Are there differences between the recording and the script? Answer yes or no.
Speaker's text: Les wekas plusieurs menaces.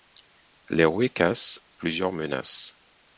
no